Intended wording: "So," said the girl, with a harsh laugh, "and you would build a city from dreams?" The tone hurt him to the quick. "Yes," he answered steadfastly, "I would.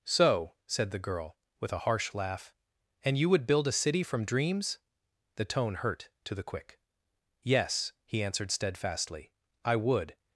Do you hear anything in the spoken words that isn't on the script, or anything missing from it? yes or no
yes